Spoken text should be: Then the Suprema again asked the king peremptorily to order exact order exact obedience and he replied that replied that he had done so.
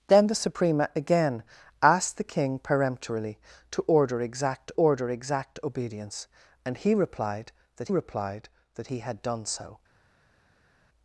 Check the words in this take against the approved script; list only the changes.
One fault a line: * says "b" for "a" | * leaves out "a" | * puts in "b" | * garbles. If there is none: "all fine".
all fine